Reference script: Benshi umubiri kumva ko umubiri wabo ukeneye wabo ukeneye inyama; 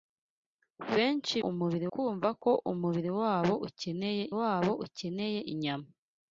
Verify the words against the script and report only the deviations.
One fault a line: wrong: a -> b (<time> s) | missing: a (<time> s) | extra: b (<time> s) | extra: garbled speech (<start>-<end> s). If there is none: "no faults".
no faults